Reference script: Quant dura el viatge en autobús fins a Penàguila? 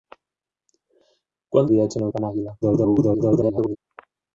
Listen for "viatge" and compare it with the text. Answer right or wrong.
right